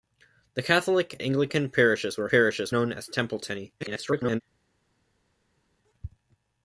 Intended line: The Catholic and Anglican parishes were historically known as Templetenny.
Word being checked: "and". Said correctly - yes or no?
no